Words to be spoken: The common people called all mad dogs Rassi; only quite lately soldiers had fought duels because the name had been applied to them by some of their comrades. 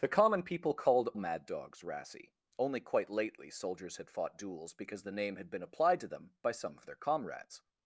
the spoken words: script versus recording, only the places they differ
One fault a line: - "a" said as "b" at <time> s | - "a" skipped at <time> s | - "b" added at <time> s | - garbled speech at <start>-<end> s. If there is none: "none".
- "all" skipped at 1.1 s